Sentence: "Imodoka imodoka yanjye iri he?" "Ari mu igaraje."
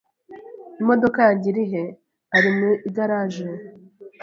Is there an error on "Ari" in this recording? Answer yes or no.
no